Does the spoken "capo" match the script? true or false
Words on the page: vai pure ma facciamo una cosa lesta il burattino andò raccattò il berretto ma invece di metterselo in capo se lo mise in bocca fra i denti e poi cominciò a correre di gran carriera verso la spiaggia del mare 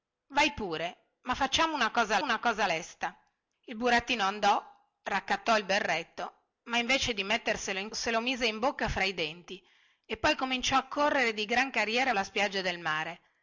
false